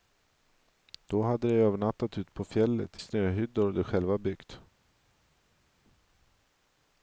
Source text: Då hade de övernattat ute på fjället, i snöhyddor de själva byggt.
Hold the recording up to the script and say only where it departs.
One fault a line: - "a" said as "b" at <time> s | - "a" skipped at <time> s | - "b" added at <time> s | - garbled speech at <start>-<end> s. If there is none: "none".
- "i" skipped at 3.0 s